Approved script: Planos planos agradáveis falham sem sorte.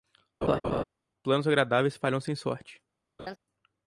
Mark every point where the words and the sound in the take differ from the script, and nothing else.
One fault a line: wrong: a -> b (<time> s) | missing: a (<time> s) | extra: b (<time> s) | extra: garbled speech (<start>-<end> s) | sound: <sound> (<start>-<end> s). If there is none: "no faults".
sound: laugh (0.4-0.8 s)
missing: planos (1.5 s)
sound: laugh (3.2-3.4 s)